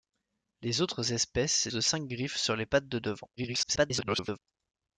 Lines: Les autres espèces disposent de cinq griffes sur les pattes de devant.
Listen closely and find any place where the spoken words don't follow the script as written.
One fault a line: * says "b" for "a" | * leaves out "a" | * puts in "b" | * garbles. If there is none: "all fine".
* leaves out "disposent"
* garbles